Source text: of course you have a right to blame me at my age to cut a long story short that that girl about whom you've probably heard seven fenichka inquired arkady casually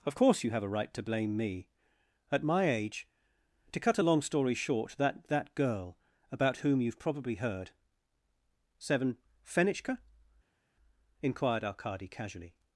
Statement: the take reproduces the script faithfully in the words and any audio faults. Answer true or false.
true